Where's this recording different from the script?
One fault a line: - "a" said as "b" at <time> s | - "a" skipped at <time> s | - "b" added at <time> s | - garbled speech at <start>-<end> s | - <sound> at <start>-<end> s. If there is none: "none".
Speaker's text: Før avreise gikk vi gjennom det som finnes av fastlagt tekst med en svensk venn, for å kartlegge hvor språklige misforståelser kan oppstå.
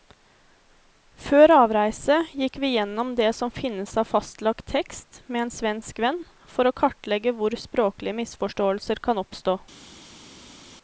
none